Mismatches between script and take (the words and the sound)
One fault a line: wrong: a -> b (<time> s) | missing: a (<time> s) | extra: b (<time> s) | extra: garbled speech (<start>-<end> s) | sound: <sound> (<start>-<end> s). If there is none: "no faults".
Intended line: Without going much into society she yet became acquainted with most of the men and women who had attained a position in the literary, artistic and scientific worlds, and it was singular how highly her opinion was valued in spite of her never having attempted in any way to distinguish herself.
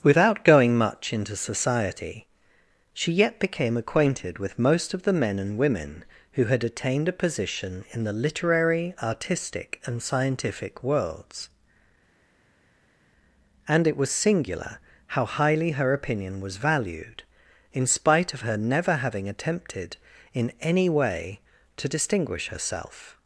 no faults